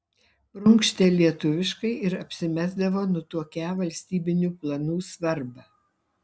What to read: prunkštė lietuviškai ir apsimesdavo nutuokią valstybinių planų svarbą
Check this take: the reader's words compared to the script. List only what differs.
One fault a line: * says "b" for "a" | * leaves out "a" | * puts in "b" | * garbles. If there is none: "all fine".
all fine